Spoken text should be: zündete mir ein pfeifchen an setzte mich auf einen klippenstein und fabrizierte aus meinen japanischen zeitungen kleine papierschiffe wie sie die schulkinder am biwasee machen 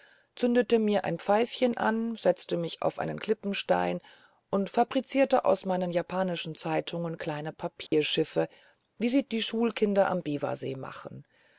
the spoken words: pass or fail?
pass